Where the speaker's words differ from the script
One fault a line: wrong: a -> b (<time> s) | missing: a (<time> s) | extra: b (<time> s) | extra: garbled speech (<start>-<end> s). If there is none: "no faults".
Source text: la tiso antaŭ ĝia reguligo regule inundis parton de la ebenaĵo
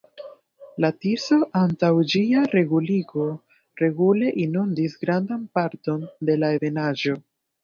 extra: grandan (5.0 s)